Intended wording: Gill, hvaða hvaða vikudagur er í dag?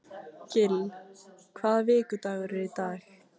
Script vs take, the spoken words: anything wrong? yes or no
yes